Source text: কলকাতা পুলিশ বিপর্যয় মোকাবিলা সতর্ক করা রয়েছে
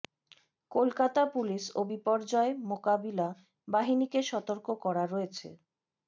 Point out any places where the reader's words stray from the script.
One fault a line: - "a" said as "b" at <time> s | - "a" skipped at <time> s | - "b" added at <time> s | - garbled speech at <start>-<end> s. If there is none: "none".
- "ও" added at 1.8 s
- "বাহিনীকে" added at 3.7 s